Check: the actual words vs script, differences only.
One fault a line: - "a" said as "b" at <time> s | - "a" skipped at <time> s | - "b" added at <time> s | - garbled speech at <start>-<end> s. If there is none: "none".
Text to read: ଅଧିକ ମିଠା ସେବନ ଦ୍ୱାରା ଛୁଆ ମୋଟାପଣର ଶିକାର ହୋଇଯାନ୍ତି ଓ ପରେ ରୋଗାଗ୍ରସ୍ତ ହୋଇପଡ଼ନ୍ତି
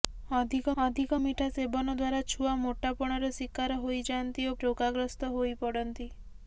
- "ଅଧିକ" added at 0.8 s
- "ପରେ" skipped at 4.5 s